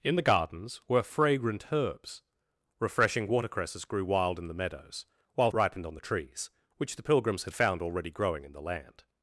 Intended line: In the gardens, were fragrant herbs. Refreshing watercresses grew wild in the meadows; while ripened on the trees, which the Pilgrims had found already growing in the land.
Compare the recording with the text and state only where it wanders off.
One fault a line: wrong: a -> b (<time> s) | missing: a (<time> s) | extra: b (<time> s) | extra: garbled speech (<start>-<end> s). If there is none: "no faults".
no faults